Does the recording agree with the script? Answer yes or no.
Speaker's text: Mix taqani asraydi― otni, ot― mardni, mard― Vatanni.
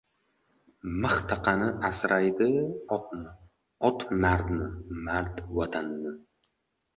yes